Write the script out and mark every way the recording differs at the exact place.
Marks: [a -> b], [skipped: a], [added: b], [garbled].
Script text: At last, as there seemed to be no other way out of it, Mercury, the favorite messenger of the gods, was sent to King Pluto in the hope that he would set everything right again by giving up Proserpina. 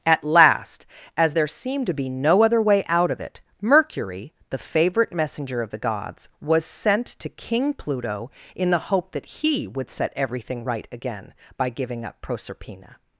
At last, as there seemed to be no other way out of it, Mercury, the favorite messenger of the gods, was sent to King Pluto in the hope that he would set everything right again by giving up Proserpina.